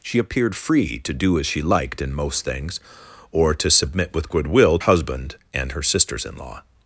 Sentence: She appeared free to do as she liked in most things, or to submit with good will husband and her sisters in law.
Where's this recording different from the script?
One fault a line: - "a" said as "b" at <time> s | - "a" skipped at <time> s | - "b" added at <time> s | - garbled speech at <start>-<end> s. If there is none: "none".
none